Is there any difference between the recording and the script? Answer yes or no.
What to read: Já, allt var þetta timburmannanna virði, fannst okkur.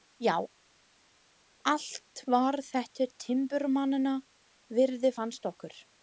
no